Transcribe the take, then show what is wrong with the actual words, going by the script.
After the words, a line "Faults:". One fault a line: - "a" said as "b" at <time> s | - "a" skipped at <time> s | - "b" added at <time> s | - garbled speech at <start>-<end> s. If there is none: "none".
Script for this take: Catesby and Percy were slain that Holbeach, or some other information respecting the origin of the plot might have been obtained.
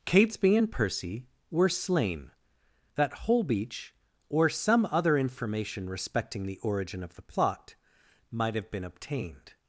Catesby and Percy were slain that Holbeach, or some other information respecting the origin of the plot might have been obtained.
Faults:
none